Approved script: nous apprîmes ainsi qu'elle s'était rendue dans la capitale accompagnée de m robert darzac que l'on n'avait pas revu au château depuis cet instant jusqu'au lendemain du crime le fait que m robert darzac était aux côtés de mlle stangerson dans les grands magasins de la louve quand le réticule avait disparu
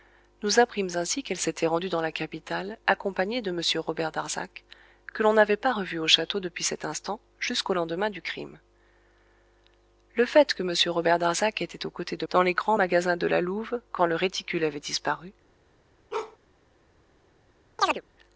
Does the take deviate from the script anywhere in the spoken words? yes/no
yes